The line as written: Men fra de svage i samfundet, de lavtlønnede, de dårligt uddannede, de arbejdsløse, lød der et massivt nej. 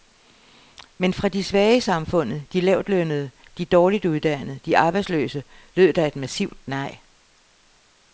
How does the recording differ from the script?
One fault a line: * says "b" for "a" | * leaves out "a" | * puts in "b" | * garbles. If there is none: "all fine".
all fine